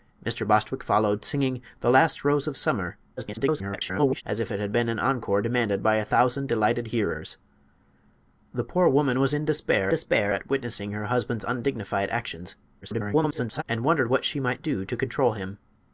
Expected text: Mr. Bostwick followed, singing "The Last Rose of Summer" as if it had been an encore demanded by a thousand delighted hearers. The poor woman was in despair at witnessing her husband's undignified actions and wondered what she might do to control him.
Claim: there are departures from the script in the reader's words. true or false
true